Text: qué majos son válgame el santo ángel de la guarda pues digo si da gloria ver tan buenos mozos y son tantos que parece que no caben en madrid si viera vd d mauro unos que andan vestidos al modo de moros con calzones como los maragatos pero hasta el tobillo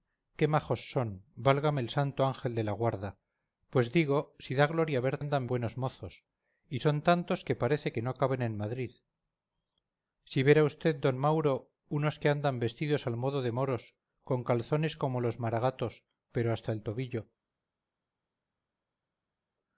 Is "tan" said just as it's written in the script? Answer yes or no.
no